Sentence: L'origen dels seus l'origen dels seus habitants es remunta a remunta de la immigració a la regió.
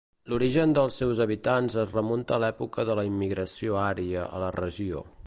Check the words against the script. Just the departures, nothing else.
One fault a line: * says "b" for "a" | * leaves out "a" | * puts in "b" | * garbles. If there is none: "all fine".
* leaves out "l'origen dels seus"
* says "l'època" for "remunta"
* puts in "ària"